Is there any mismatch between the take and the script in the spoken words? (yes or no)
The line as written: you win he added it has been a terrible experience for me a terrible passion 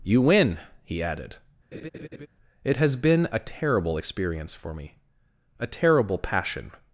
no